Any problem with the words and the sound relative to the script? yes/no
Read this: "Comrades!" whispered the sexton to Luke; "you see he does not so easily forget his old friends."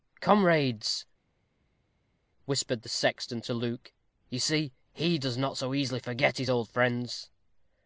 no